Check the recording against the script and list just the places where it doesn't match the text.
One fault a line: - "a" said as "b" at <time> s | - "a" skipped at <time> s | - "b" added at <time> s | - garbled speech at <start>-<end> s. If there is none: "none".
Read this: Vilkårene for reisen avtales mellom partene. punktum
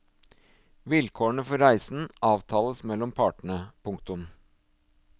none